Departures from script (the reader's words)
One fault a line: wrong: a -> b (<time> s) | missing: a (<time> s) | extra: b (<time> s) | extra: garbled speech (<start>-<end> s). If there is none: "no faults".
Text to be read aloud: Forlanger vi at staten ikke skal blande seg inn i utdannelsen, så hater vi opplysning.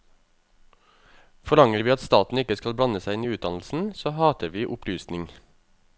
no faults